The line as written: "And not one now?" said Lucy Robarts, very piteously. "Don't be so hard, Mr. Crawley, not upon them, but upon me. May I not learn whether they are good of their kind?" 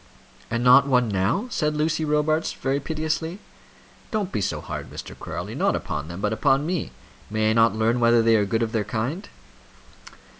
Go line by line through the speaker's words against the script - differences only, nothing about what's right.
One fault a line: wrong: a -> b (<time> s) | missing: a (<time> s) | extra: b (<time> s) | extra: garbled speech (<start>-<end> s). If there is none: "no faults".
no faults